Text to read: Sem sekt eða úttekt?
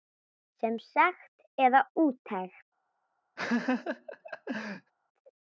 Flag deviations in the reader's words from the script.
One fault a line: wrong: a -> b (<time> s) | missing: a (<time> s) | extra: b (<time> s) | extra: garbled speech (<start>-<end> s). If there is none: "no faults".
no faults